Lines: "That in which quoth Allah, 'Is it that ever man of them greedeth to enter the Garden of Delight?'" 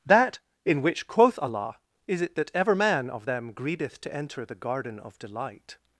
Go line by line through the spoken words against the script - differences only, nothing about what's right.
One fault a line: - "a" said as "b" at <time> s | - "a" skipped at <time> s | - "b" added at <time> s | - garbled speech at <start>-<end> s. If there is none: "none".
none